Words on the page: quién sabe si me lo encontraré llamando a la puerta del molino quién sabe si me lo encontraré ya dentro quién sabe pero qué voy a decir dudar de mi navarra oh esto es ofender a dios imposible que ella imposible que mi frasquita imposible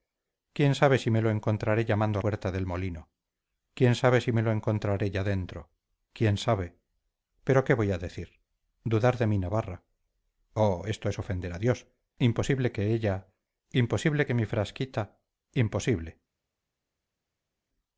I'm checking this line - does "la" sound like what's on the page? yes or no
no